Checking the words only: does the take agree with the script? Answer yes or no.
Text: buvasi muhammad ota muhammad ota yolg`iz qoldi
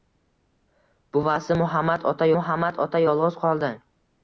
yes